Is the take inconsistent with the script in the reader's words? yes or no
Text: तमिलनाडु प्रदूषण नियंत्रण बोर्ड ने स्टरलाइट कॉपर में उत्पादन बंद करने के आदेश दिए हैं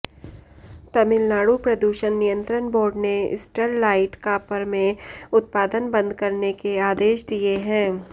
no